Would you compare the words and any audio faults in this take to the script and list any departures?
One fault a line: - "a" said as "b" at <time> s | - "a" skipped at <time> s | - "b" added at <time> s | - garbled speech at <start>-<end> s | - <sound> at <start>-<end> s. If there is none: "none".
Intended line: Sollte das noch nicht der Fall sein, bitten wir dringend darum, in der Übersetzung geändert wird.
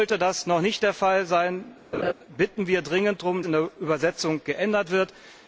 - laugh at 1.9-2.1 s